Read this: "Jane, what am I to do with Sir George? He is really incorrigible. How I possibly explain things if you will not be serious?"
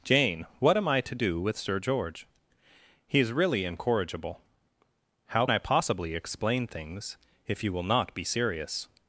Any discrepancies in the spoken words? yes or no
no